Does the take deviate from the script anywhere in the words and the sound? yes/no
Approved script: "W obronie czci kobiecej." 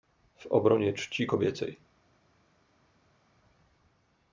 no